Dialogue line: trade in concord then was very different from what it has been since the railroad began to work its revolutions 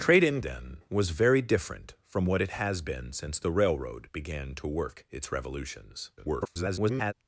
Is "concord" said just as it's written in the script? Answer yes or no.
no